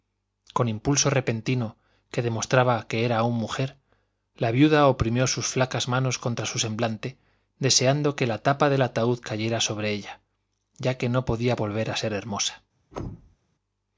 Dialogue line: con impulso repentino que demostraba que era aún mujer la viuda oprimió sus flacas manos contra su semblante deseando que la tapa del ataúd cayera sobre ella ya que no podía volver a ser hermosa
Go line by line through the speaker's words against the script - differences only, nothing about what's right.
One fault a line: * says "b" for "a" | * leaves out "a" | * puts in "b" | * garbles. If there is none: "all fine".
all fine